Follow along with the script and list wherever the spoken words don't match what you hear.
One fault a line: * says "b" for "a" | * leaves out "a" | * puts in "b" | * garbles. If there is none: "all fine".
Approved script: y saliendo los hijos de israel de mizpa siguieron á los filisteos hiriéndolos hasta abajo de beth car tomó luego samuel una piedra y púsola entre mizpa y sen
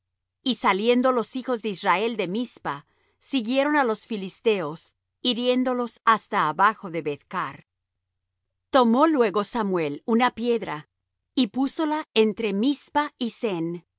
all fine